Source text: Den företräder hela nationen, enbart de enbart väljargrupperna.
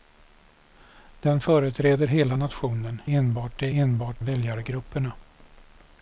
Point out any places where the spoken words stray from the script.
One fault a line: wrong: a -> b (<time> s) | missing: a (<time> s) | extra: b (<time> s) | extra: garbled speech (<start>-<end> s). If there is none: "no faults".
no faults